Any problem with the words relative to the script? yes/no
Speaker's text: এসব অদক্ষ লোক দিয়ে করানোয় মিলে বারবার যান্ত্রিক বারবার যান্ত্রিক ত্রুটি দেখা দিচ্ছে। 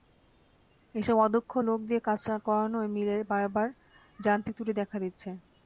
yes